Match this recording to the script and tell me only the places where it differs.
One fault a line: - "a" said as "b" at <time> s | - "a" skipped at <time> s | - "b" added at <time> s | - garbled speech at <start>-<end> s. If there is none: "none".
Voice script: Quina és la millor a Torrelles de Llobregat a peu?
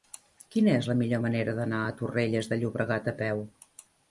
- "manera d'anar" added at 1.2 s